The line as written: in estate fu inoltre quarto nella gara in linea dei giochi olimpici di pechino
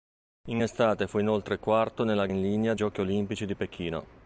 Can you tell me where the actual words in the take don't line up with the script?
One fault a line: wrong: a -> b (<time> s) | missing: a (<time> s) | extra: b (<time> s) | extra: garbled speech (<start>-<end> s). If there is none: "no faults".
missing: gara (2.3 s)
missing: dei (2.7 s)